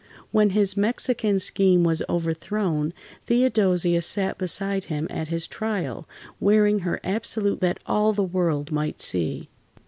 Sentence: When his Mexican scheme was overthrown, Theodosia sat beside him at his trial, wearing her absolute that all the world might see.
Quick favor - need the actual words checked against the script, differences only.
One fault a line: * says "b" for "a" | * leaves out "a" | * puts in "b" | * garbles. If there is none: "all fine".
all fine